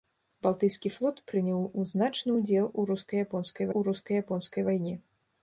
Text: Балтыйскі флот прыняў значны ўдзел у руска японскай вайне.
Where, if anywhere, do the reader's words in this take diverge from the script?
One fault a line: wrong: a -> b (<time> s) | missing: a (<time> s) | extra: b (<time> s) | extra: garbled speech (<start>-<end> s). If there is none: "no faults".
extra: у руска японскай (3.8 s)